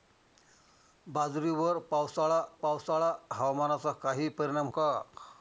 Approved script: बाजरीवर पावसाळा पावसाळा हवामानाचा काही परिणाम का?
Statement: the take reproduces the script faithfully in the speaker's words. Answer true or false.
true